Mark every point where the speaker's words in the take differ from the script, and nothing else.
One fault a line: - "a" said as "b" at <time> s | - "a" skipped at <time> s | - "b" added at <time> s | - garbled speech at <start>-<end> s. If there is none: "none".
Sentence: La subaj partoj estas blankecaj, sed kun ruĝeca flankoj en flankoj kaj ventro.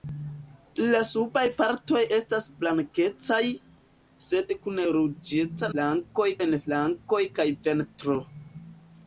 none